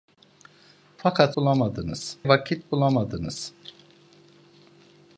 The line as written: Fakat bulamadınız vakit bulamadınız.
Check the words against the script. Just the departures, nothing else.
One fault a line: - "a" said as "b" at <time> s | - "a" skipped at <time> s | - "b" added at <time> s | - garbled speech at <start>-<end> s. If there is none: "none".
none